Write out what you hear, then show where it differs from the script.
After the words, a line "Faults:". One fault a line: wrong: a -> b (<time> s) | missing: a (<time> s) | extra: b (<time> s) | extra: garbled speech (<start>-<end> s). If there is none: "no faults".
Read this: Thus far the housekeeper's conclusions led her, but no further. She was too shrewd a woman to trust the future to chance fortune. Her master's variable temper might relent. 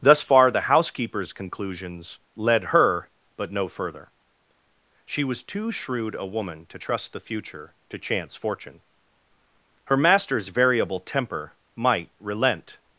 Thus far the housekeeper's conclusions led her, but no further. She was too shrewd a woman to trust the future to chance fortune. Her master's variable temper might relent.
Faults:
no faults